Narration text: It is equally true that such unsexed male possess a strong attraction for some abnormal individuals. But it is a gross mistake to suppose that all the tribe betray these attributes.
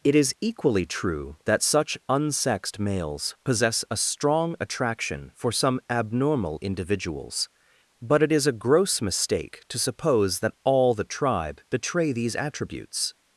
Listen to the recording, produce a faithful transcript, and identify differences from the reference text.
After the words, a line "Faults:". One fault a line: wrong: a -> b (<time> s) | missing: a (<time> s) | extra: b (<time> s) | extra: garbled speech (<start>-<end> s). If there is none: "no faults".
It is equally true that such unsexed males possess a strong attraction for some abnormal individuals. But it is a gross mistake to suppose that all the tribe betray these attributes.
Faults:
wrong: male -> males (2.8 s)